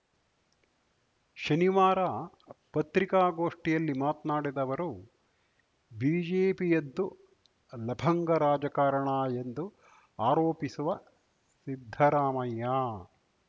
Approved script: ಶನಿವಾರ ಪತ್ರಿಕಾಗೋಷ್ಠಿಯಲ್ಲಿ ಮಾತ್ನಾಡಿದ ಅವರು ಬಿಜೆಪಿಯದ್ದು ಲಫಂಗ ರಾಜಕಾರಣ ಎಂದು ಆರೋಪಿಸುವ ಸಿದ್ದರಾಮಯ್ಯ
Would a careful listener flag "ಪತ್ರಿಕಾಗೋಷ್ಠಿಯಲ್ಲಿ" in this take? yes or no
no